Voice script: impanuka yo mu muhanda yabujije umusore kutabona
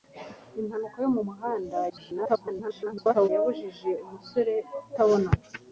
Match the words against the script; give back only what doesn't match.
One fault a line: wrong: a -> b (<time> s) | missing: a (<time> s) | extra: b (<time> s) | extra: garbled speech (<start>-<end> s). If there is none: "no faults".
extra: garbled speech (1.9-3.3 s)